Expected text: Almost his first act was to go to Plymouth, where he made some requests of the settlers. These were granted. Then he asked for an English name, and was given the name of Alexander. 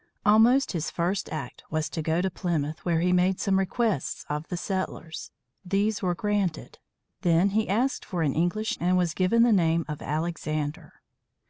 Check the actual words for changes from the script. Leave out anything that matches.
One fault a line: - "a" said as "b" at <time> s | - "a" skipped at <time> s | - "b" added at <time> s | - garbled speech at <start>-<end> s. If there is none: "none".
- "name" skipped at 8.8 s